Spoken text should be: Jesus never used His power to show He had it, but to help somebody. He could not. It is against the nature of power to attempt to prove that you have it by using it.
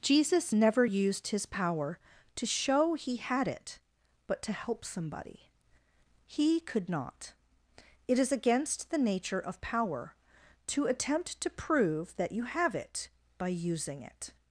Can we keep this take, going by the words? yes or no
yes